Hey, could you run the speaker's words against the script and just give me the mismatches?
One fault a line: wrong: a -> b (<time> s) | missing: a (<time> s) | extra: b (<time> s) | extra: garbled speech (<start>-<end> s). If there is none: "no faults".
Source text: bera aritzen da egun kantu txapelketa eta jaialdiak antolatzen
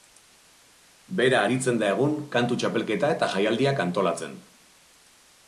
no faults